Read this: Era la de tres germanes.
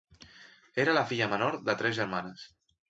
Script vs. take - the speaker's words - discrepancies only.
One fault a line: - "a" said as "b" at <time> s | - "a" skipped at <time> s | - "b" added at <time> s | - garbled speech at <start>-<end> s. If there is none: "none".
- "filla menor" added at 1.1 s